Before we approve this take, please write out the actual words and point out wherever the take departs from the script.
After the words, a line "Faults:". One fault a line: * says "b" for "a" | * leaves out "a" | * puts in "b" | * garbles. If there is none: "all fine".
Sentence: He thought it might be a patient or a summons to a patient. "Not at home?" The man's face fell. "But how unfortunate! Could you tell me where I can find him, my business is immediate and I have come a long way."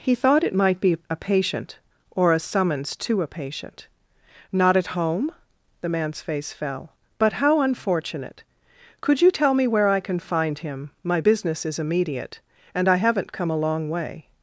He thought it might be a patient or a summons to a patient. "Not at home?" The man's face fell. "But how unfortunate! Could you tell me where I can find him, my business is immediate and I haven't come a long way."
Faults:
* says "haven't" for "have"